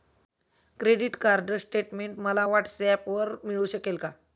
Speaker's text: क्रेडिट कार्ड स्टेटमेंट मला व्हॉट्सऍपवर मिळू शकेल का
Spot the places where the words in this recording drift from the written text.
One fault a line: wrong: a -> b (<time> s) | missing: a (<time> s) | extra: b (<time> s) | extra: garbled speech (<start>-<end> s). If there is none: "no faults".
no faults